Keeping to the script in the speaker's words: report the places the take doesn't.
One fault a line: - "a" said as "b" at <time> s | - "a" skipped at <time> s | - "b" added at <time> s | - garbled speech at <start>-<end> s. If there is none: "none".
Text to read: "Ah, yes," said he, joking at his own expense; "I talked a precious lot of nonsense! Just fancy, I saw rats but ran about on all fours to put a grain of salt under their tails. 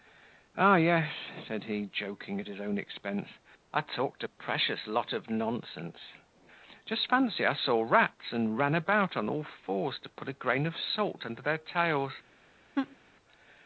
- "but" said as "and" at 8.3 s